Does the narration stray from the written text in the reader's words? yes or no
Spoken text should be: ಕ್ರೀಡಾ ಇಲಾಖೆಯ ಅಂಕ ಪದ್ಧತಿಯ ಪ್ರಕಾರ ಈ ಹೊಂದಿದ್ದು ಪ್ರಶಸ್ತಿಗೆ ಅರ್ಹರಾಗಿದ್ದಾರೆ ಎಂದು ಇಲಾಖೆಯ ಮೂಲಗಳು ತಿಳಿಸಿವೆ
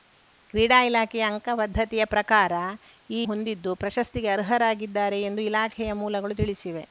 no